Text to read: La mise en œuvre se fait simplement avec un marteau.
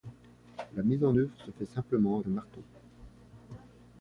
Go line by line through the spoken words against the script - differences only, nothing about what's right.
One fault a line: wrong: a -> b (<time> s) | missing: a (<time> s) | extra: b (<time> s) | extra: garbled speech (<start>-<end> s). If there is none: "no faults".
missing: avec (2.2 s)